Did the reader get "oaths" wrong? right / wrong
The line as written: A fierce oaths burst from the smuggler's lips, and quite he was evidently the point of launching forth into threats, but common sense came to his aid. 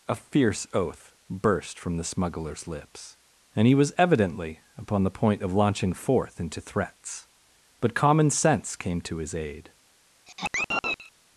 wrong